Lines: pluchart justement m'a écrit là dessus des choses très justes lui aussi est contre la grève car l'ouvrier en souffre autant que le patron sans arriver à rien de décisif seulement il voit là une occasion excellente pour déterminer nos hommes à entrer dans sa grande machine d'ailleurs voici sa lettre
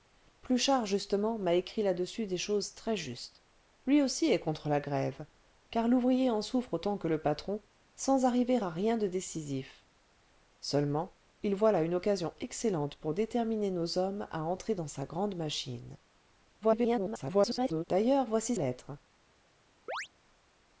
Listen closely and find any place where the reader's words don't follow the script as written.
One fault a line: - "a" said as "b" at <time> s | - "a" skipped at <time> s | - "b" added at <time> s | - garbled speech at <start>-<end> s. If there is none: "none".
- garbled speech at 16.6-17.8 s
- "sa" skipped at 18.5 s